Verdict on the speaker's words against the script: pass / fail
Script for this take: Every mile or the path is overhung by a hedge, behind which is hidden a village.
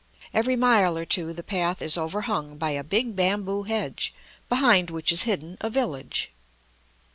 fail